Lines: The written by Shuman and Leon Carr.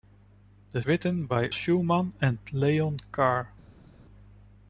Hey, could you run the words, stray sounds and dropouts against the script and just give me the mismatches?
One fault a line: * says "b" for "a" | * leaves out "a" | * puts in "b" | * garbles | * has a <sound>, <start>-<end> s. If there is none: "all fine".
all fine